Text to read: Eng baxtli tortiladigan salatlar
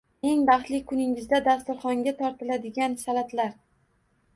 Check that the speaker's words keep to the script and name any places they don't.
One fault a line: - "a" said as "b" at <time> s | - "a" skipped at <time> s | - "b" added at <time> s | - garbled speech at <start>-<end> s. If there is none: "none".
- "kuningizda dasturxonga" added at 0.9 s